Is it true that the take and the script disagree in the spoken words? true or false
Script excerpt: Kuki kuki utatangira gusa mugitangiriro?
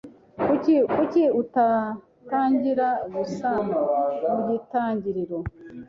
false